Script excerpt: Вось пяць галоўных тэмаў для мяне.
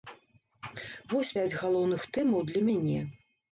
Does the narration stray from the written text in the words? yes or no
no